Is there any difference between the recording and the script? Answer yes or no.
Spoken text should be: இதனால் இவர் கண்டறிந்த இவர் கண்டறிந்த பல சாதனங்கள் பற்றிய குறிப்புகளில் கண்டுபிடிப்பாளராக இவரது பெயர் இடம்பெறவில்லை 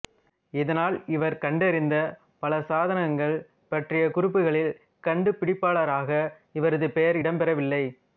yes